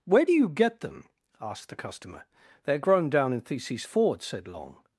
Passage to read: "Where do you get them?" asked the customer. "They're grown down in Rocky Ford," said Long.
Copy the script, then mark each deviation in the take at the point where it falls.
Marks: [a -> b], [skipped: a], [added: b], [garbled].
"Where do you get them?" asked the customer. "They're grown down in [Rocky -> Theses] Ford," said Long.